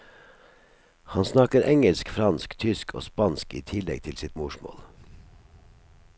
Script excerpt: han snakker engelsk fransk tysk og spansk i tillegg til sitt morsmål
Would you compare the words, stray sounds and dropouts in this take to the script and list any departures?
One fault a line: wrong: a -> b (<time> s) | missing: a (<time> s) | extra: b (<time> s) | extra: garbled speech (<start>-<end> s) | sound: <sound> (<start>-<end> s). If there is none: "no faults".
no faults